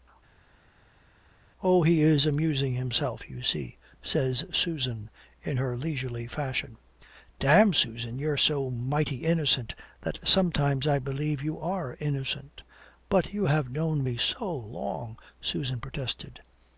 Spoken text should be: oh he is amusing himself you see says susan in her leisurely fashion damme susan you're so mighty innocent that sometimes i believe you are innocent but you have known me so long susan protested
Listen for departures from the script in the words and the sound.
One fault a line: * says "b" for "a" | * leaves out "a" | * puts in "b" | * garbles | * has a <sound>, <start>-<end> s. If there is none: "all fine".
all fine